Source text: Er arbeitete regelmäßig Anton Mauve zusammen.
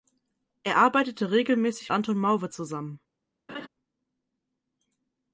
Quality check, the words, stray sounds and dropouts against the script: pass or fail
fail